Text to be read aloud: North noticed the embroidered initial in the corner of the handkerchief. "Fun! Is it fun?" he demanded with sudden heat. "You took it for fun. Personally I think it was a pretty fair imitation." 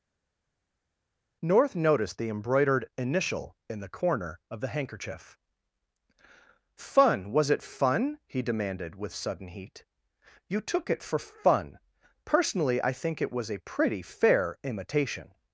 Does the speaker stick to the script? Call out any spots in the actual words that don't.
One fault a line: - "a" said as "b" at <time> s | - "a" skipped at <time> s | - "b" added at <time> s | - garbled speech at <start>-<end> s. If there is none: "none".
- "Is" said as "Was" at 7.3 s